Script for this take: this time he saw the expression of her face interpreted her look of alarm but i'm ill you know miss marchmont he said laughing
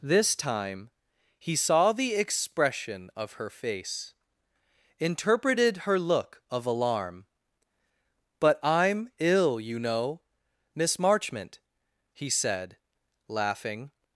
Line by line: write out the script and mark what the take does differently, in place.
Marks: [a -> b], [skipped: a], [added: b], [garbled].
this time he saw the expression of her face interpreted her look of alarm but i'm ill you know miss marchmont he said laughing